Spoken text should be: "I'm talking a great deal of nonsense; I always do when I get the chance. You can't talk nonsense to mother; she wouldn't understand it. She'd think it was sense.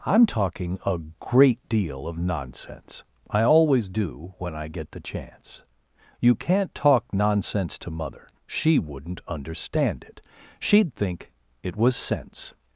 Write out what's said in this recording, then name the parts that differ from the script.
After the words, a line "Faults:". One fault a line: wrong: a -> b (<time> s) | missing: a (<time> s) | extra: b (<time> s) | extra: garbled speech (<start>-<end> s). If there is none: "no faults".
"I'm talking a great deal of nonsense; I always do when I get the chance. You can't talk nonsense to mother; she wouldn't understand it. She'd think it was sense.
Faults:
no faults